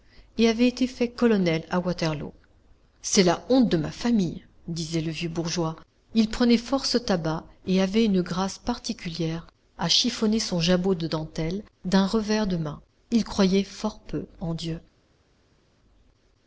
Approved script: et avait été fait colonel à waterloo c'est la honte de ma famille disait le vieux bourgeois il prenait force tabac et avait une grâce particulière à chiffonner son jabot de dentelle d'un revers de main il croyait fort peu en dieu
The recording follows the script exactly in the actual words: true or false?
true